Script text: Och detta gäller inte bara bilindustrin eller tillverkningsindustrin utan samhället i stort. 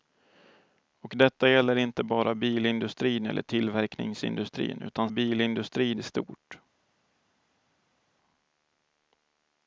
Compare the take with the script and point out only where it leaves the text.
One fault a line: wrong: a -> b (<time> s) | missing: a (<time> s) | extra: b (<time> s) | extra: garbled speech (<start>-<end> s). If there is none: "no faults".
wrong: samhället -> bilindustrin (5.1 s)